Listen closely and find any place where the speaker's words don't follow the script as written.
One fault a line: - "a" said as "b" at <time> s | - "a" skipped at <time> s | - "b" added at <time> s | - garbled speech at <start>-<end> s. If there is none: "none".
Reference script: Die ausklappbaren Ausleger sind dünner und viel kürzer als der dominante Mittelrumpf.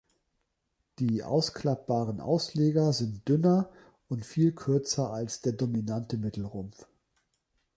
none